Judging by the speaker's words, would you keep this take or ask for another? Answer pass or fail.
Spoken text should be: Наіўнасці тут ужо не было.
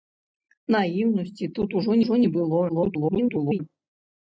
fail